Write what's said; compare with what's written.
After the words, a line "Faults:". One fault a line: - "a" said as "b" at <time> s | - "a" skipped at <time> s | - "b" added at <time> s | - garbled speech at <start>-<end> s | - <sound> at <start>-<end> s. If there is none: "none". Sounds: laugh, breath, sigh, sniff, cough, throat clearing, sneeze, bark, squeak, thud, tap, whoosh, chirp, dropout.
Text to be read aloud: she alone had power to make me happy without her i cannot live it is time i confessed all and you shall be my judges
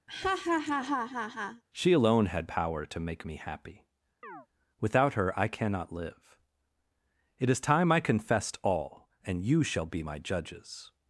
she alone had power to make me happy without her i cannot live it is time i confessed all and you shall be my judges
Faults:
- laugh at 0.1-1.6 s
- chirp at 4.2-4.5 s